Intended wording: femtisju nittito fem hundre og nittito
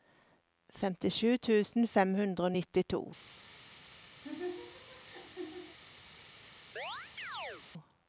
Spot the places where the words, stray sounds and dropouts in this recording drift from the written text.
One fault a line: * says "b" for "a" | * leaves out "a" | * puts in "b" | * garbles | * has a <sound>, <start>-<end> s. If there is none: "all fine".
* says "tusen" for "nittito"
* has a laugh, 4.2-5.8 s
* has a chirp, 6.8-7.7 s